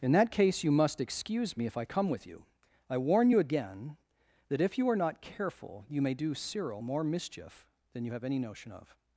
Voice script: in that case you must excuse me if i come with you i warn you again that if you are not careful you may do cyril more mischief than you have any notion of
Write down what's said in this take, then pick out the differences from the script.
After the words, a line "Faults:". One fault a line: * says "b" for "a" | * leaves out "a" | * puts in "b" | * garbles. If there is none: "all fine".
in that case you must excuse me if i come with you i warn you again that if you are not careful you may do cyril more mischief than you have any notion of
Faults:
all fine